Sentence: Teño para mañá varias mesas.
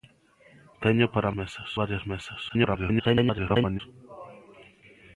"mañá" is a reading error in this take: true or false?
true